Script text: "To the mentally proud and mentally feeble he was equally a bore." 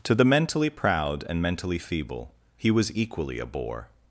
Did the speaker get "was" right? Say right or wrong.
right